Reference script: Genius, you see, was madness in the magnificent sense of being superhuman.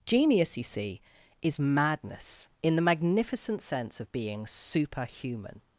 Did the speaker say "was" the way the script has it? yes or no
no